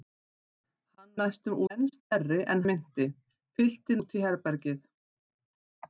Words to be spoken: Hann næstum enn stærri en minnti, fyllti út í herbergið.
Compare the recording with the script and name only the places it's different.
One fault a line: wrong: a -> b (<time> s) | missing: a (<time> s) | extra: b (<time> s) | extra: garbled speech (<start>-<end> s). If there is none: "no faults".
no faults